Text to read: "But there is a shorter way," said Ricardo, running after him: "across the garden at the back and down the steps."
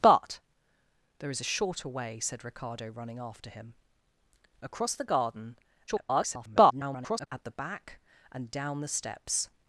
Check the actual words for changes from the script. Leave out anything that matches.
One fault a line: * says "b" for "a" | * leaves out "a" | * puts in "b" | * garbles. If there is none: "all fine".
* garbles